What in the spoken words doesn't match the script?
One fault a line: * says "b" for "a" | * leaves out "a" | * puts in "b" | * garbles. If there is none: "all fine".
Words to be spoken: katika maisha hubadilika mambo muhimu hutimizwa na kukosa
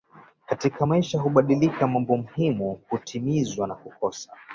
all fine